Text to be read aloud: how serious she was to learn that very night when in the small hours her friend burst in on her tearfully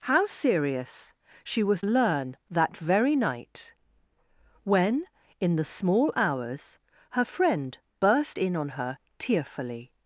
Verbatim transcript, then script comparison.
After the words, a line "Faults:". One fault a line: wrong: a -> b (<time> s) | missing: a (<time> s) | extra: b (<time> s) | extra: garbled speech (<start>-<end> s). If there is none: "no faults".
how serious she was learn that very night when in the small hours her friend burst in on her tearfully
Faults:
missing: to (1.8 s)